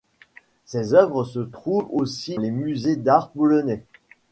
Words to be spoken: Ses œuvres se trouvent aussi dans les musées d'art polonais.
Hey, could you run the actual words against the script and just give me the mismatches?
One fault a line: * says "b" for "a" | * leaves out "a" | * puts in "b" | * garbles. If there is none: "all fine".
* leaves out "dans"